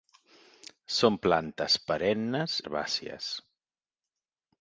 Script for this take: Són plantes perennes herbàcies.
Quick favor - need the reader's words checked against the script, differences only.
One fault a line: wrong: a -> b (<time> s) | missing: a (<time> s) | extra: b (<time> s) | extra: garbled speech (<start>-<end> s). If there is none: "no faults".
no faults